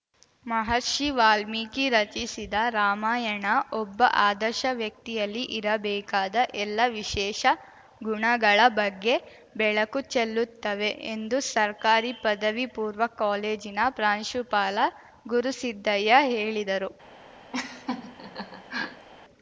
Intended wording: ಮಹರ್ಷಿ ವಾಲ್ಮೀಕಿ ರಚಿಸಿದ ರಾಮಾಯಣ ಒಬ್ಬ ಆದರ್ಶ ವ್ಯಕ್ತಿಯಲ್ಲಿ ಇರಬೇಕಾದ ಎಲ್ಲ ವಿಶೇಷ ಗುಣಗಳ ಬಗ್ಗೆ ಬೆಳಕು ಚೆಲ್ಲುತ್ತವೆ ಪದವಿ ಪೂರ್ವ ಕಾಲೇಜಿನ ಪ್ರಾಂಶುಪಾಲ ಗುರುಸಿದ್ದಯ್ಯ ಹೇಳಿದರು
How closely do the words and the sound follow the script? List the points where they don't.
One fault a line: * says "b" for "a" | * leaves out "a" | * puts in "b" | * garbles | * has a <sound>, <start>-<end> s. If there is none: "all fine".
* puts in "ಎಂದು ಸರ್ಕಾರಿ"
* has a laugh, 17.5-19.1 s